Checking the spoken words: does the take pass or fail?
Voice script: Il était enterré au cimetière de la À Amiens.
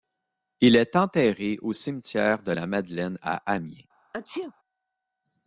fail